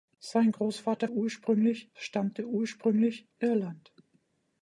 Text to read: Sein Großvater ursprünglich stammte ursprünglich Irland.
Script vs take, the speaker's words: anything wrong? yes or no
no